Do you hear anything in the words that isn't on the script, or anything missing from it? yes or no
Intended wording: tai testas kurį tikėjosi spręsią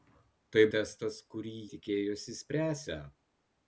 no